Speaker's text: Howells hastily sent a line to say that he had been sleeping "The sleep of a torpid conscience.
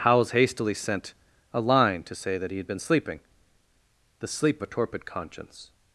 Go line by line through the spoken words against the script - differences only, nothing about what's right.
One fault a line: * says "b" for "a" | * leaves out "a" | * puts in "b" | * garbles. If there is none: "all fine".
* leaves out "of"